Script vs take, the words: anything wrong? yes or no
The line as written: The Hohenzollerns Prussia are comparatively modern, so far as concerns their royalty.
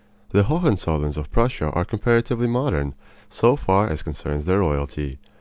yes